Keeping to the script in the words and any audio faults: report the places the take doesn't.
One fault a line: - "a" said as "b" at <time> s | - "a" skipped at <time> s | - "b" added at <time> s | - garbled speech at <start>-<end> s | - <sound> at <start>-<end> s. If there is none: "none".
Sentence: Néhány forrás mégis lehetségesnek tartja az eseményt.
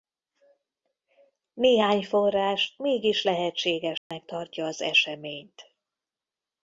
- dropout at 4.0-4.1 s